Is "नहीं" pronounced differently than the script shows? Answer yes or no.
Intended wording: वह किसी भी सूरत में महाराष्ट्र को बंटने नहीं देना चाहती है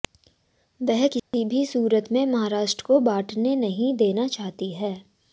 no